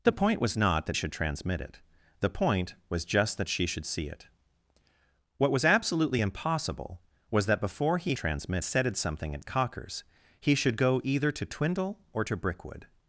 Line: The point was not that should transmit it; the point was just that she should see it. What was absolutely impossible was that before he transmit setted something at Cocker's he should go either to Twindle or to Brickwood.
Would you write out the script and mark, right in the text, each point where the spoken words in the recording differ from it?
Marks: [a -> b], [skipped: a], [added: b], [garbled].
The point was not that should transmit it; the point was just that she should see it. What was absolutely impossible was that before he transmit setted something at Cocker's he should go either to Twindle or to Brickwood.